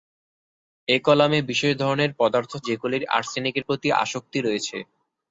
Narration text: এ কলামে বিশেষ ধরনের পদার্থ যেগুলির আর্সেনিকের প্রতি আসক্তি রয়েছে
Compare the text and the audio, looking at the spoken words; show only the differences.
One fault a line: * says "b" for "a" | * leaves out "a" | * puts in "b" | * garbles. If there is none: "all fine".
all fine